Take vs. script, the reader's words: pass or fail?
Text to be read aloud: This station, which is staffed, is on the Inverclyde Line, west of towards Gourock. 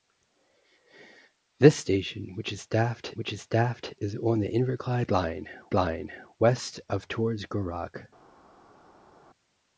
fail